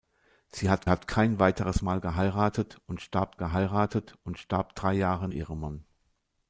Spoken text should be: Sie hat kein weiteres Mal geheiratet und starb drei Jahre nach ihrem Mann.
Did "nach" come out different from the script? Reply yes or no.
yes